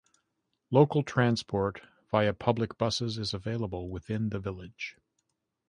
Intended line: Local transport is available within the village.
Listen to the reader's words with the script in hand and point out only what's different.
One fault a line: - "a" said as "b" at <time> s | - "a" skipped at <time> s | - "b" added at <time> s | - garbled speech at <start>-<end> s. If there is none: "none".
- "via public buses" added at 2.1 s